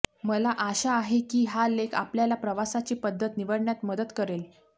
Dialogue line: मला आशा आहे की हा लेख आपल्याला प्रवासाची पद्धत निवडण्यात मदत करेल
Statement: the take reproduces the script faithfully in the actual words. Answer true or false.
true